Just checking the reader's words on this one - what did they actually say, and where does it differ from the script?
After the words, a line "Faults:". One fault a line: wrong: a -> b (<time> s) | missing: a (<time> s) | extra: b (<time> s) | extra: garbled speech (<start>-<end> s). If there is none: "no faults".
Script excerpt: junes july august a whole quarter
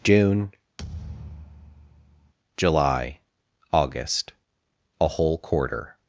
june july august a whole quarter
Faults:
wrong: junes -> june (0.0 s)